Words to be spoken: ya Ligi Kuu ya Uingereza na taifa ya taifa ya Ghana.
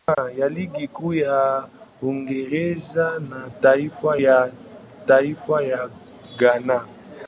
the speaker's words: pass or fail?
pass